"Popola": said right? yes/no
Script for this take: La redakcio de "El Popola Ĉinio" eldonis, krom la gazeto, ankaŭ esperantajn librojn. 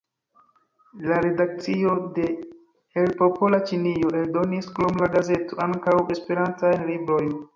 yes